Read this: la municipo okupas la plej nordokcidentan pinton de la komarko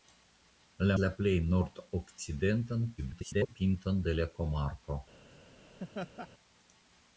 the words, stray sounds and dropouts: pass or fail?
fail